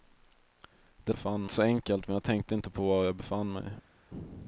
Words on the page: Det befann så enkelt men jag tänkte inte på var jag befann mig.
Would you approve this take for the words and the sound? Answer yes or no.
yes